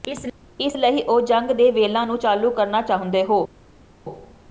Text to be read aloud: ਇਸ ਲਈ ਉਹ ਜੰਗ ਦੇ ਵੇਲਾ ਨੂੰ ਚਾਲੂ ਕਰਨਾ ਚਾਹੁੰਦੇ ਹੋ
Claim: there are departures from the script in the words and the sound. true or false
false